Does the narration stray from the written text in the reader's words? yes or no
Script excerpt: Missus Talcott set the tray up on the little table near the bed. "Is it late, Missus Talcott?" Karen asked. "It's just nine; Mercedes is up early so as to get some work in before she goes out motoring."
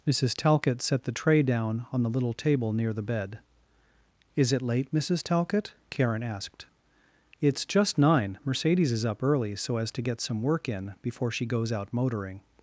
yes